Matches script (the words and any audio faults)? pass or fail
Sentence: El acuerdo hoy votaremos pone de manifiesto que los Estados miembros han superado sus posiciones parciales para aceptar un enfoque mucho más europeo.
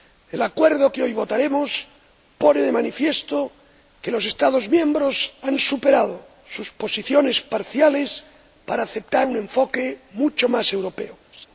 fail